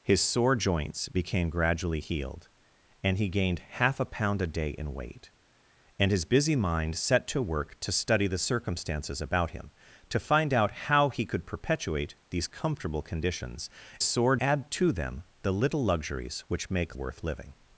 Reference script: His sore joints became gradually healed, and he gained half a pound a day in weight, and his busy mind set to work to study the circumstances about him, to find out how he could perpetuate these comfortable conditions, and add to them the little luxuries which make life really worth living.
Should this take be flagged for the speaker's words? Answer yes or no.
yes